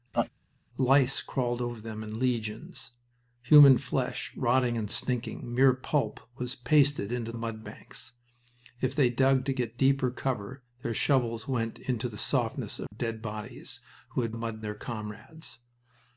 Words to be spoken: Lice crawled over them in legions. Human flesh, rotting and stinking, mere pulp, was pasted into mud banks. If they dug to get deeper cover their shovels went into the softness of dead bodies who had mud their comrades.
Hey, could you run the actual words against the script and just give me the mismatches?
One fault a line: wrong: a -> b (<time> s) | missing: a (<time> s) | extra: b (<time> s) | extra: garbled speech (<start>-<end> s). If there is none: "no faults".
no faults